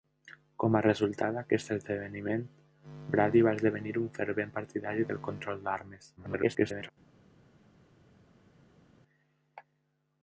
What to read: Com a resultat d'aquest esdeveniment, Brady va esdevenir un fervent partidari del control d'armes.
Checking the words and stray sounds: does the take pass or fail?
fail